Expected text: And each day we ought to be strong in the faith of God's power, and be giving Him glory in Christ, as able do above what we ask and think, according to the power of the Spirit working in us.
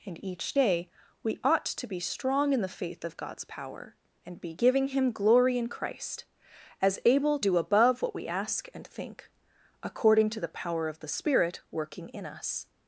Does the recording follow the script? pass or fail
pass